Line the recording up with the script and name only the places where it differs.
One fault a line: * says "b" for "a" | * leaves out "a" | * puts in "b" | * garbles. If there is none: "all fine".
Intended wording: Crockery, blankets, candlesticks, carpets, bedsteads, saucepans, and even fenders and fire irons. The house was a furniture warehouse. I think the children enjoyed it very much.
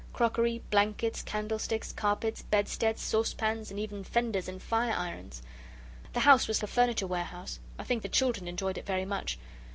all fine